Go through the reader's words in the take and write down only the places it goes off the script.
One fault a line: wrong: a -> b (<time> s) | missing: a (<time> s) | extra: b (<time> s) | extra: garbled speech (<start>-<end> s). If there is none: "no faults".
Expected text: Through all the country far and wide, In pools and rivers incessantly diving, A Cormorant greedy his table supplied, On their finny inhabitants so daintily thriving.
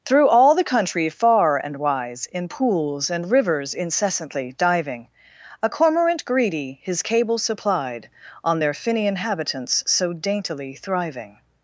wrong: wide -> wise (1.8 s)
wrong: table -> cable (7.0 s)